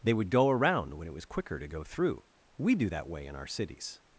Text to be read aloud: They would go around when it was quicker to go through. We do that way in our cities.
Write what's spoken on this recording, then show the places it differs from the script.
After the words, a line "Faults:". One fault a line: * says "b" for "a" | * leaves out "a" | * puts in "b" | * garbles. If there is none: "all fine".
They would go around when it was quicker to go through. We do that way in our cities.
Faults:
all fine